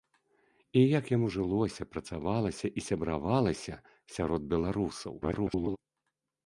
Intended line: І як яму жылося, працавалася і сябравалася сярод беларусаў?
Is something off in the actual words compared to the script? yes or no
yes